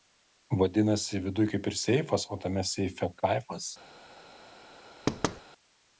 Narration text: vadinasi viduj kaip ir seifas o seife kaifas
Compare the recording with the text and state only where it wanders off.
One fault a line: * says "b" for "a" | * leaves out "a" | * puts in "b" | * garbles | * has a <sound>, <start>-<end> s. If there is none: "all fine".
* puts in "tame"
* has a thud, 5.1-5.4 s